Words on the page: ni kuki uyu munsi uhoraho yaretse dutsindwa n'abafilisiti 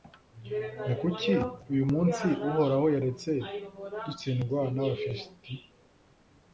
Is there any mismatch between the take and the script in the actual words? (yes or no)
no